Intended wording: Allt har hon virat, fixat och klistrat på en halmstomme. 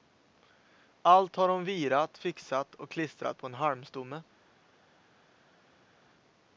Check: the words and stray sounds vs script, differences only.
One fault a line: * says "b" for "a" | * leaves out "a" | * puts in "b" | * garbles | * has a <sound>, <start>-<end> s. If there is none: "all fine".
all fine